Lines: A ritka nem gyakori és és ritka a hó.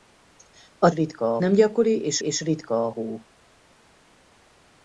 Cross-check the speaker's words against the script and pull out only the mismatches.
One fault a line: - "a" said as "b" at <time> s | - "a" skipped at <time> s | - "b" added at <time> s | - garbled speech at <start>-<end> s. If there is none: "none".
none